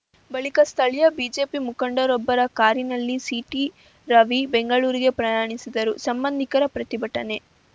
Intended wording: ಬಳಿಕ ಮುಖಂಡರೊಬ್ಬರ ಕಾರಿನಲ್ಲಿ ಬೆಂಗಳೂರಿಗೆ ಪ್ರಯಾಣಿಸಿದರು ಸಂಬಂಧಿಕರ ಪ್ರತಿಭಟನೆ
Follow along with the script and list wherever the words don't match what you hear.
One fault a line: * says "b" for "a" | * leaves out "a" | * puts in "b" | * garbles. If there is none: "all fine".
* puts in "ಸ್ಥಳೀಯ ಬಿಜೆಪಿ"
* puts in "ಸಿಟಿರವಿ"